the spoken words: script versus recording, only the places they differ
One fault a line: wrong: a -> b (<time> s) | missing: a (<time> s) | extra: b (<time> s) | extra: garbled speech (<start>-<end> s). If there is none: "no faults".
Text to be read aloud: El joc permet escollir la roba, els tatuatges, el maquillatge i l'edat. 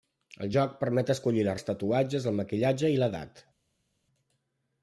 missing: roba (1.6 s)